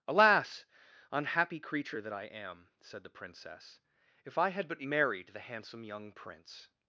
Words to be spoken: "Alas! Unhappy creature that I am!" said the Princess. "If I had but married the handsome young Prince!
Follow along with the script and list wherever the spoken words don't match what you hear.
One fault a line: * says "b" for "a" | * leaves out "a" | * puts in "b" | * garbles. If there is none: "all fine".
all fine